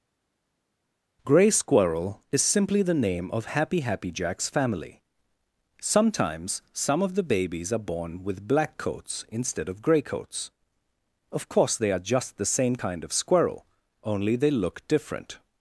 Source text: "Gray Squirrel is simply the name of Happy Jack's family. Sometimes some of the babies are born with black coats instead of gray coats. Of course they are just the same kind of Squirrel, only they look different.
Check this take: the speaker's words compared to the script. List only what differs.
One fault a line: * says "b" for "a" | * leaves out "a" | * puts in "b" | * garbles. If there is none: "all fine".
* puts in "Happy"